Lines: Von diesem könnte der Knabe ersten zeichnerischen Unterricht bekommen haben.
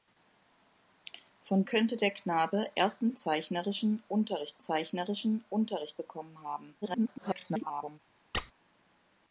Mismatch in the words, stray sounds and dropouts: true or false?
true